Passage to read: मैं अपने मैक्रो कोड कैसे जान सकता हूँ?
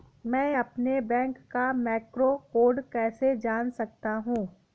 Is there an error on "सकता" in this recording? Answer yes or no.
no